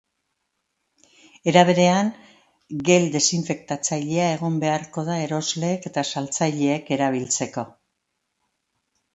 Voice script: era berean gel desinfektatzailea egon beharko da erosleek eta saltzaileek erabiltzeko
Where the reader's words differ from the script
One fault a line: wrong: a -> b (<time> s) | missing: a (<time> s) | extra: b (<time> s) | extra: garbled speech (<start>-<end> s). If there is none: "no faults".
no faults